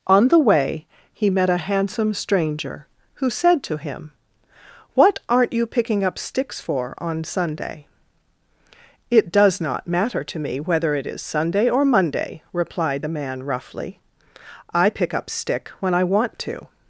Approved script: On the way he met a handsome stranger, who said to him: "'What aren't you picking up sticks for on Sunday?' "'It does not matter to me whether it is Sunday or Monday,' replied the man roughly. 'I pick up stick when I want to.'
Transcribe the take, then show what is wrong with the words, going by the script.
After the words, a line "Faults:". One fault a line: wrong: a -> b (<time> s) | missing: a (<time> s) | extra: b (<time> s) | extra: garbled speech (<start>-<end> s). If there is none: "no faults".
On the way he met a handsome stranger, who said to him: "'What aren't you picking up sticks for on Sunday?' "'It does not matter to me whether it is Sunday or Monday,' replied the man roughly. 'I pick up stick when I want to.'
Faults:
no faults